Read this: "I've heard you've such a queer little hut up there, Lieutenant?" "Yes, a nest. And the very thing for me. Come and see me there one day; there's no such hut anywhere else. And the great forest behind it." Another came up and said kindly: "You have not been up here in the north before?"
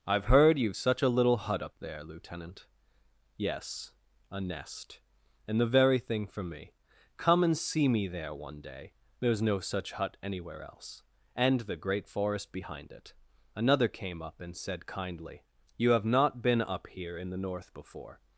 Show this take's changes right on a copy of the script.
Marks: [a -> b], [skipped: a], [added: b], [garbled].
"I've heard you've such a [skipped: queer] little hut up there, Lieutenant?" "Yes, a nest. And the very thing for me. Come and see me there one day; there's no such hut anywhere else. And the great forest behind it." Another came up and said kindly: "You have not been up here in the north before?"